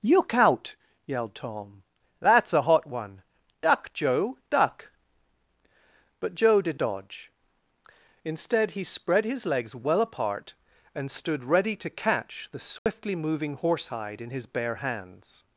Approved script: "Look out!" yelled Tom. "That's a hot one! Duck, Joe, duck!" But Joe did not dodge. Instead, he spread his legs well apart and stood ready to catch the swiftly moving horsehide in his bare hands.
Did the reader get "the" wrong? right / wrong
right